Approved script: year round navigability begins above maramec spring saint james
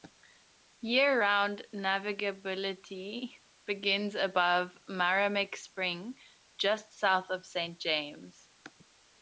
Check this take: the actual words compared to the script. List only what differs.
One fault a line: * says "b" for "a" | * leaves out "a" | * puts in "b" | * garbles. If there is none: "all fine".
* puts in "just south of"